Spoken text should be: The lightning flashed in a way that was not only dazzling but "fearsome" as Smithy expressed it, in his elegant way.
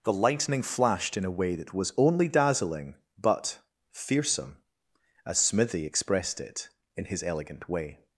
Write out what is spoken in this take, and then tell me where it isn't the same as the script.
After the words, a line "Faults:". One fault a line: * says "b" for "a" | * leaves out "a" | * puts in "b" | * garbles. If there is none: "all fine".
The lightning flashed in a way that was only dazzling but "fearsome" as Smithy expressed it, in his elegant way.
Faults:
* leaves out "not"